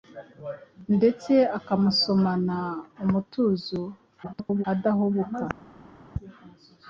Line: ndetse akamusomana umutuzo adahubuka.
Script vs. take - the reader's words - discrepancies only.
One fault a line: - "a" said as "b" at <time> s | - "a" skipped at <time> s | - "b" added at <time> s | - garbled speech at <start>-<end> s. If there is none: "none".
- garbled speech at 4.2-4.6 s